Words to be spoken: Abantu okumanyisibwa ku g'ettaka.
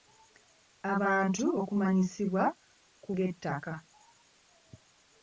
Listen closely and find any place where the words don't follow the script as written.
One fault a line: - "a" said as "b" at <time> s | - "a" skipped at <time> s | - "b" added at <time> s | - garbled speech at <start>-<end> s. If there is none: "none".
none